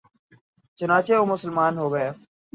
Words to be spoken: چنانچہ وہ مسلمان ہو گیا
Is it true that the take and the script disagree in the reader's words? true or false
false